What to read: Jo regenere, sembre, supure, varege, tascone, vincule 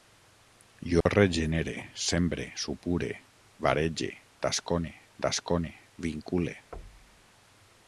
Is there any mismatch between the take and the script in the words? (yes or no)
yes